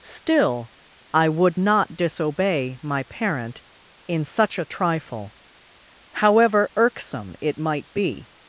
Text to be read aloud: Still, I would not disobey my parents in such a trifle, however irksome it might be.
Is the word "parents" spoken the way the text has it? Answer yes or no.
no